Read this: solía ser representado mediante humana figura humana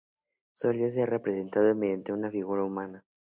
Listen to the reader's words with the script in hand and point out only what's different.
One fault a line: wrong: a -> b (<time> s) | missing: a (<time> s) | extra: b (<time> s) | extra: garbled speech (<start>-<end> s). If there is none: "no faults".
wrong: humana -> una (2.1 s)